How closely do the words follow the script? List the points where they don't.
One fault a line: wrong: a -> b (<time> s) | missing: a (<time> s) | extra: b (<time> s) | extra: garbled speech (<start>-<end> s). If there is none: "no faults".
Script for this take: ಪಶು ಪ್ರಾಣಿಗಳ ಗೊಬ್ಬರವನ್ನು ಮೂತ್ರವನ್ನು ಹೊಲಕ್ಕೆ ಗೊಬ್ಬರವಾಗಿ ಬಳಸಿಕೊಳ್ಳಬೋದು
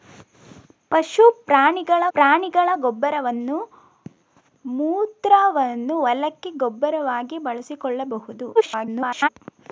extra: ಪ್ರಾಣಿಗಳ (2.1 s)
extra: garbled speech (8.6-9.3 s)